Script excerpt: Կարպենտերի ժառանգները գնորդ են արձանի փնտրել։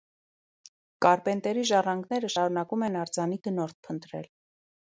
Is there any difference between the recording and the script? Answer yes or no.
yes